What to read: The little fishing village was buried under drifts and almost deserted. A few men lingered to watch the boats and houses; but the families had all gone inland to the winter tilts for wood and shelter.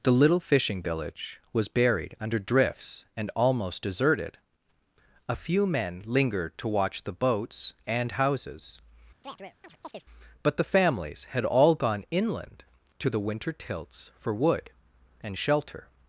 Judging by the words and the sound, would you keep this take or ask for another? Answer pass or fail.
fail